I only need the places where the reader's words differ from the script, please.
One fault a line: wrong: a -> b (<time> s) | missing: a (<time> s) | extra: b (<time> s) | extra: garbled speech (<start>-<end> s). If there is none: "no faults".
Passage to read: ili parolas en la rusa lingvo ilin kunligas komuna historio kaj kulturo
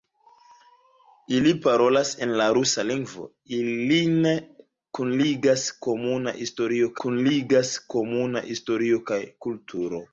extra: kunligas komuna historio (7.1 s)